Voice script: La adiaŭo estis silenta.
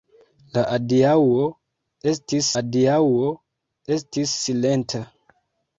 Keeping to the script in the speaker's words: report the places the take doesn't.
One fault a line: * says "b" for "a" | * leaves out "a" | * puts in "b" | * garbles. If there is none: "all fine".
* puts in "adiaŭo estis"